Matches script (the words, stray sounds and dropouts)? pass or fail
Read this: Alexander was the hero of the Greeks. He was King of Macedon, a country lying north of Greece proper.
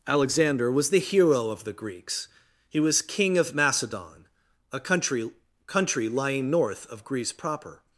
fail